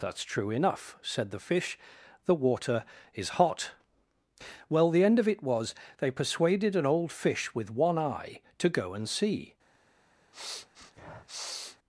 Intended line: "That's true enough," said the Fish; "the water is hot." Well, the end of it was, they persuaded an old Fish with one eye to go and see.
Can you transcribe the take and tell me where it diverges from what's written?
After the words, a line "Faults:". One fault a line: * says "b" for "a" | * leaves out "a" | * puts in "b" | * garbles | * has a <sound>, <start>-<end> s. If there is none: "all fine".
"That's true enough," said the Fish; "the water is hot." Well, the end of it was, they persuaded an old Fish with one eye to go and see.
Faults:
* has a sniff, 10.3-11.8 s